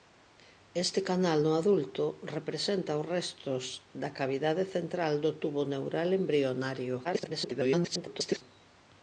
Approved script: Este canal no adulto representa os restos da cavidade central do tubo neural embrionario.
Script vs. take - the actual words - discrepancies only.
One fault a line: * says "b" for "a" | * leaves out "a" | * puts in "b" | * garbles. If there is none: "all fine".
* garbles